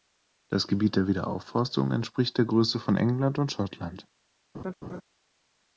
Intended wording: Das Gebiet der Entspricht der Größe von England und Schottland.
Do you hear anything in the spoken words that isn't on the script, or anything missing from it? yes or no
yes